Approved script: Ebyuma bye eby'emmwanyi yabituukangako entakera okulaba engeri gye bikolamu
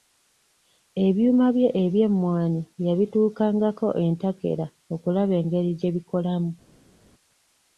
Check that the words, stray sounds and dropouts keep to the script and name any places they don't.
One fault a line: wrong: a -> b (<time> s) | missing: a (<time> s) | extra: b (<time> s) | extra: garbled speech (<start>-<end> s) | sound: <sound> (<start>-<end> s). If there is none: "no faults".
no faults